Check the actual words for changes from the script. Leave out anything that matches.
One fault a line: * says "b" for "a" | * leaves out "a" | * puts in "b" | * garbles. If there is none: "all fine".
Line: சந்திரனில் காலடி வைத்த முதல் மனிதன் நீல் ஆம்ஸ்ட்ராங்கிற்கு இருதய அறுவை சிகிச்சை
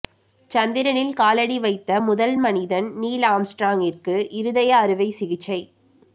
all fine